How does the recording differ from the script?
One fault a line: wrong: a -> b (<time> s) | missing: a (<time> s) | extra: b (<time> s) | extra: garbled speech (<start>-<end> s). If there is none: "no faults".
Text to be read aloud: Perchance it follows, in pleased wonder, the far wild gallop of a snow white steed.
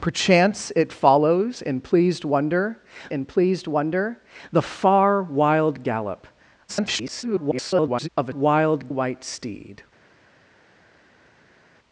extra: in pleased wonder (3.1 s)
extra: garbled speech (6.7-8.1 s)
wrong: snow -> wild (8.3 s)